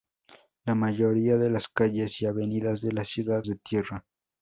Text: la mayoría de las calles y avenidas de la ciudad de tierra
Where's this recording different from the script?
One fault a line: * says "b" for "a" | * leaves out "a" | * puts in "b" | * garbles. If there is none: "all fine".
all fine